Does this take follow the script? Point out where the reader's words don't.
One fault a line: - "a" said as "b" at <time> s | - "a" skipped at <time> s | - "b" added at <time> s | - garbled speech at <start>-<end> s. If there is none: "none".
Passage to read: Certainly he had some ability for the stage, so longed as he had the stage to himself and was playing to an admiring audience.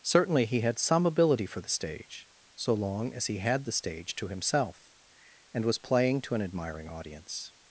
- "longed" said as "long" at 2.7 s